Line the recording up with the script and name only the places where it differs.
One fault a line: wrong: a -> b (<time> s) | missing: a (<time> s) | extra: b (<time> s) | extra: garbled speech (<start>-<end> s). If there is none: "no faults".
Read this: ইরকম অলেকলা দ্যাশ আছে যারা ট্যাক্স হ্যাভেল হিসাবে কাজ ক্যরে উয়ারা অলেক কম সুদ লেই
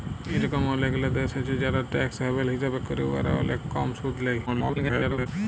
missing: কাজ (2.8 s)
extra: garbled speech (4.5-5.3 s)